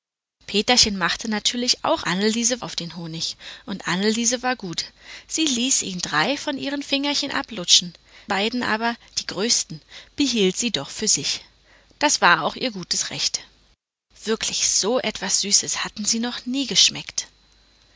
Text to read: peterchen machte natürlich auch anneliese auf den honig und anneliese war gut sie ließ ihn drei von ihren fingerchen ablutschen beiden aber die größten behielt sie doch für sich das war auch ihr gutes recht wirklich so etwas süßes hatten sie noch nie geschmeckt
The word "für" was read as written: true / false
true